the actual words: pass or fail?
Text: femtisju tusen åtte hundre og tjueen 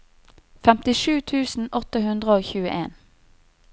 pass